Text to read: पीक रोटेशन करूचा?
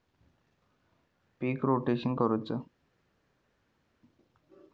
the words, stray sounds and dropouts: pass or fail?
pass